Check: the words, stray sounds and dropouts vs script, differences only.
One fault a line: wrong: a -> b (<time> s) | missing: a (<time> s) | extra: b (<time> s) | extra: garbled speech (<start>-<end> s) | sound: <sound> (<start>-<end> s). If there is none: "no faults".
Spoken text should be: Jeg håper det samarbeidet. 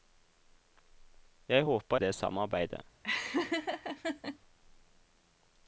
sound: laugh (3.0-4.4 s)